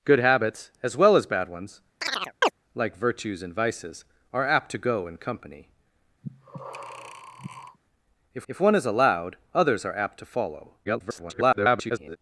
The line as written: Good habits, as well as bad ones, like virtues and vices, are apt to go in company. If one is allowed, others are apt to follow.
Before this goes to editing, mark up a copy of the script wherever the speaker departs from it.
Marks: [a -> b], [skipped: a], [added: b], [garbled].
Good habits, as well as bad ones, like virtues and vices, are apt to go in company. If [added: if] one is allowed, others are apt to follow. [garbled]